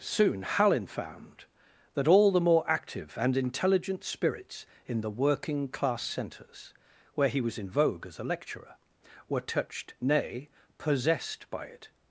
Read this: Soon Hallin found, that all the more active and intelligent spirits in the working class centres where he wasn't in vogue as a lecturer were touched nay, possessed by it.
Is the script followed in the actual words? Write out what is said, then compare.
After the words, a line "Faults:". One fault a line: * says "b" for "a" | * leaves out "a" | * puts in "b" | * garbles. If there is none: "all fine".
Soon Hallin found, that all the more active and intelligent spirits in the working class centres where he was in vogue as a lecturer were touched nay, possessed by it.
Faults:
* says "was" for "wasn't"